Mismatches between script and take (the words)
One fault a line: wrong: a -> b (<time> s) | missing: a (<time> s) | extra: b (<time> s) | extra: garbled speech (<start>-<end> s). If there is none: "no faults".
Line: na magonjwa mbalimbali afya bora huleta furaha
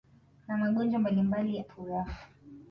missing: afya bora huleta (1.6 s)